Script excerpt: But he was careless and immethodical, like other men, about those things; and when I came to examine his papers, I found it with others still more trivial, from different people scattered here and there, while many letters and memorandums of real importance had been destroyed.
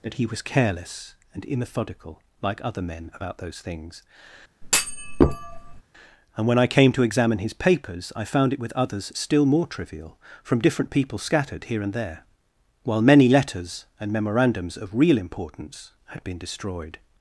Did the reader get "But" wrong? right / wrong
wrong